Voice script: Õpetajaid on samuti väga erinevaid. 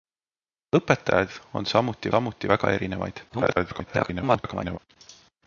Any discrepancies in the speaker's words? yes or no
yes